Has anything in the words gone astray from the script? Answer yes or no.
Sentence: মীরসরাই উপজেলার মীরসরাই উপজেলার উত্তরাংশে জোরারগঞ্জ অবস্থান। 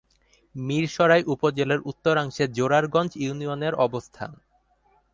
yes